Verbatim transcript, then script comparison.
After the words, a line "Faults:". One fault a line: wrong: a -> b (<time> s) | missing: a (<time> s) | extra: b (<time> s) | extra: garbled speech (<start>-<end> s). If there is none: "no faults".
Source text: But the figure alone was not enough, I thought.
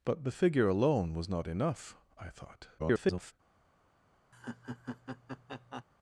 But the figure alone was not enough, I thought. [garbled]
Faults:
extra: garbled speech (2.8-3.3 s)